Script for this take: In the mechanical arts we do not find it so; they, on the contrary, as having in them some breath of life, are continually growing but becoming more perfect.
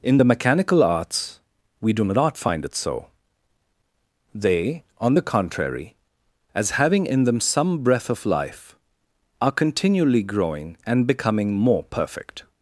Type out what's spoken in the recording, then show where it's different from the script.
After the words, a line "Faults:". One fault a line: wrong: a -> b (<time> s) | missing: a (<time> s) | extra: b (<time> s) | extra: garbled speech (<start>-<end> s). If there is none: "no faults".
In the mechanical arts we do not find it so; they, on the contrary, as having in them some breath of life, are continually growing and becoming more perfect.
Faults:
wrong: but -> and (10.9 s)